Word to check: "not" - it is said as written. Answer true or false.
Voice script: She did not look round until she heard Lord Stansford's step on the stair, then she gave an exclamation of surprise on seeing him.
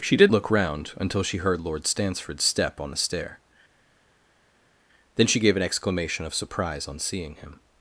false